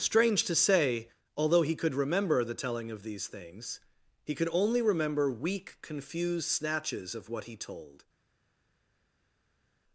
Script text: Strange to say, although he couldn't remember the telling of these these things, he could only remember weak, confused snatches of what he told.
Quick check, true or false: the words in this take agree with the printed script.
false